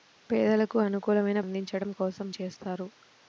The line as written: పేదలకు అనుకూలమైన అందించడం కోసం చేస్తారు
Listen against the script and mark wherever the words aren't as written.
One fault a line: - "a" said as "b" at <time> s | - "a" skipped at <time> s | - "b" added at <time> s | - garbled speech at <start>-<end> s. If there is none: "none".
none